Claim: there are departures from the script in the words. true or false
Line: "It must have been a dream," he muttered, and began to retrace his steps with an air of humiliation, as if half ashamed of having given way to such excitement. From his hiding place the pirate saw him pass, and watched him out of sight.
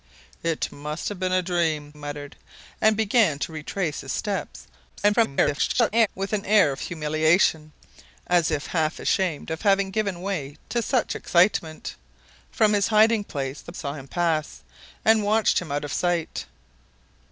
true